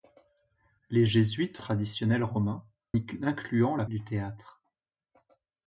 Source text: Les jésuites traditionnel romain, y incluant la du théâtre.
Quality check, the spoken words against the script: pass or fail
pass